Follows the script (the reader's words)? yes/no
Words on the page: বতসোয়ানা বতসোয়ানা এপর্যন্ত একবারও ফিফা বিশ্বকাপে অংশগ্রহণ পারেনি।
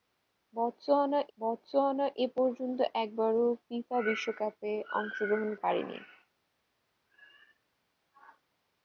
yes